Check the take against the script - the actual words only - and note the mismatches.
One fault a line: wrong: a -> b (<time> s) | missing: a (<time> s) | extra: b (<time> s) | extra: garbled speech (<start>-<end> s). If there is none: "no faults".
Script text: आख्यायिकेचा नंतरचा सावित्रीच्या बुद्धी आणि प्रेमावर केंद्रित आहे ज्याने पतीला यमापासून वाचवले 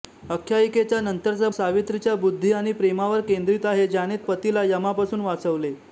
no faults